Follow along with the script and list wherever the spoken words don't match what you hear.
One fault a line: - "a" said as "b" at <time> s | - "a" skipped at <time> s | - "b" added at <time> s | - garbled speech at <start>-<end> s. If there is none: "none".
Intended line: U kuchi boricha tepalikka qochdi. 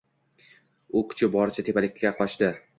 none